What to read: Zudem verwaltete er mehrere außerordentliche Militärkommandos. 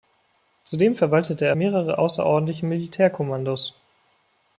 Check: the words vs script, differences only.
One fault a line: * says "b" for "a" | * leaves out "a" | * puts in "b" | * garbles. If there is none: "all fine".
all fine